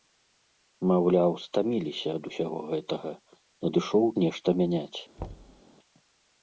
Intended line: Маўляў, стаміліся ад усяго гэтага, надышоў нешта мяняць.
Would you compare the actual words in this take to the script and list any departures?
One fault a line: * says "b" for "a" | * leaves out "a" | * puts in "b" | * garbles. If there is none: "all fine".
all fine